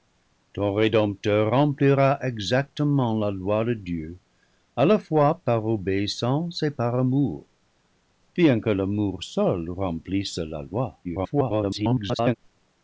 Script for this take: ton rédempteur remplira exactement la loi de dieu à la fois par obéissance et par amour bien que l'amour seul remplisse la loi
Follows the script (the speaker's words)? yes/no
no